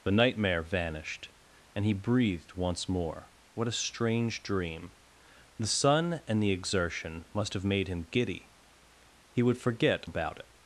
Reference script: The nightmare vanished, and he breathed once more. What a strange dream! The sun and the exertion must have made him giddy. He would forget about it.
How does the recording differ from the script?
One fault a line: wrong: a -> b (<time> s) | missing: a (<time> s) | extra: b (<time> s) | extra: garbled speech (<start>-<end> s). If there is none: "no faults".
no faults